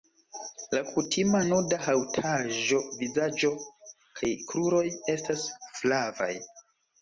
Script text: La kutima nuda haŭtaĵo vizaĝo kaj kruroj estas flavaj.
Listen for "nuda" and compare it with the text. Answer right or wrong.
right